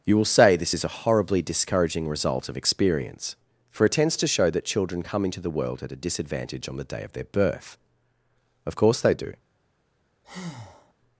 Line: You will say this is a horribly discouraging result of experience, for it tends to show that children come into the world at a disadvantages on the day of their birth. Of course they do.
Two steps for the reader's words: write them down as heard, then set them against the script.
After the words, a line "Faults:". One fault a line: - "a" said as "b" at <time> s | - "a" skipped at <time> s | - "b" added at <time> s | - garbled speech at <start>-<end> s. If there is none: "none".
You will say this is a horribly discouraging result of experience, for it tends to show that children come into the world at a disadvantage on the day of their birth. Of course they do.
Faults:
- "disadvantages" said as "disadvantage" at 6.0 s